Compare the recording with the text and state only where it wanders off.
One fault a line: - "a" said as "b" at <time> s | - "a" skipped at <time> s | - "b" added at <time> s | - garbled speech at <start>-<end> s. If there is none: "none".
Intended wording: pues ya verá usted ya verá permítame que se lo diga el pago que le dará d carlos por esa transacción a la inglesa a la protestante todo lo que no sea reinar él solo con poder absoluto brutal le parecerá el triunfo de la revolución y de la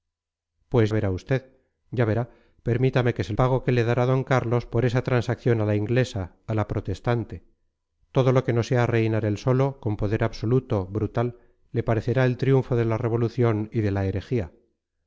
- "ya" skipped at 0.9 s
- "lo diga el" skipped at 3.3 s